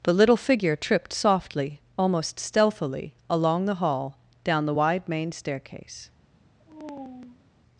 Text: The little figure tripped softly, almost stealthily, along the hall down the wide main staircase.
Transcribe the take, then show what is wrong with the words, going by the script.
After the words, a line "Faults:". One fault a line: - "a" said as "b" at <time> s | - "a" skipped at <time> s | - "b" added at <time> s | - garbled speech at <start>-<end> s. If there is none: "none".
The little figure tripped softly, almost stealthily, along the hall down the wide main staircase.
Faults:
none